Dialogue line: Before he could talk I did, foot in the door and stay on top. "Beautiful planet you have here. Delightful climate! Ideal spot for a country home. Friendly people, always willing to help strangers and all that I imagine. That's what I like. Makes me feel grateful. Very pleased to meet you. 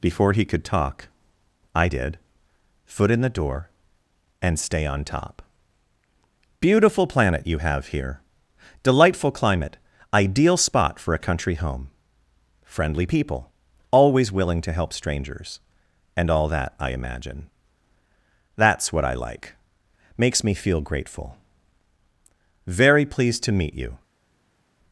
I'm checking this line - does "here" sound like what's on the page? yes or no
yes